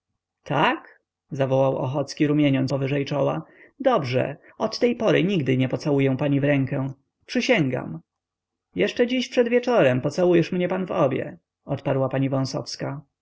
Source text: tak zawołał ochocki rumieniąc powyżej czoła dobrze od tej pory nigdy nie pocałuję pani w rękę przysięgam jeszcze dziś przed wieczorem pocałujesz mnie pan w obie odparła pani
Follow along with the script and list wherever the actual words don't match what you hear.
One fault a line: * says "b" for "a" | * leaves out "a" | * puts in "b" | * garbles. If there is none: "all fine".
all fine